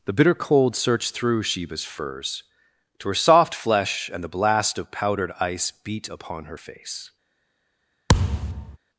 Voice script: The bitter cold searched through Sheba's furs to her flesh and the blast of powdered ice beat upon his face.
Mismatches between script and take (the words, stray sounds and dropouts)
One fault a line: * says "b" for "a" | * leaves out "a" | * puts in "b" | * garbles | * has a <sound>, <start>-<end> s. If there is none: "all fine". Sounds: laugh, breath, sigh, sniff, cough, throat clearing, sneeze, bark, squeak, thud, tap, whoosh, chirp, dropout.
* puts in "soft"
* says "her" for "his"
* has a thud, 8.1-8.8 s